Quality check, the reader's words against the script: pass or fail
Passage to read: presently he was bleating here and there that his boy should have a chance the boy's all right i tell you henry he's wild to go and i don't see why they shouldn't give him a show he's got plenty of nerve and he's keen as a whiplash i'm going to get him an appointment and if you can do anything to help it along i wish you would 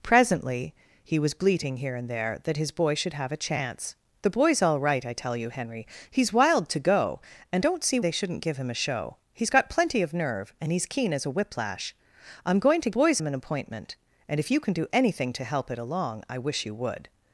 fail